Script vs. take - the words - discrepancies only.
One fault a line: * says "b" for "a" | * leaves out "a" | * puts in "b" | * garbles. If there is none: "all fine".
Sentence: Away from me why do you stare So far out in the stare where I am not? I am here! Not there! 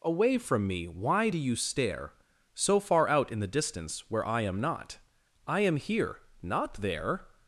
* says "distance" for "stare"